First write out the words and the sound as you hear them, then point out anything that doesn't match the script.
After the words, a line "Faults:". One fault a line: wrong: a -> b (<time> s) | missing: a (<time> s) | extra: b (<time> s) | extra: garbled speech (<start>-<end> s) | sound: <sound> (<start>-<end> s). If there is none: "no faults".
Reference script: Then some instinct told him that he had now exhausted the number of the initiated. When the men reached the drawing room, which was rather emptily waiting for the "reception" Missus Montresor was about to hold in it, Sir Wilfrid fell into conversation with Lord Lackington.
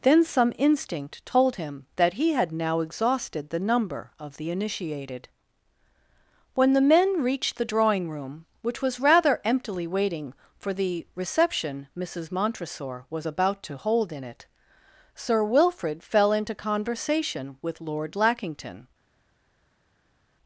Then some instinct told him that he had now exhausted the number of the initiated. When the men reached the drawing room, which was rather emptily waiting for the "reception" Missus Montresor was about to hold in it, Sir Wilfrid fell into conversation with Lord Lackington.
Faults:
no faults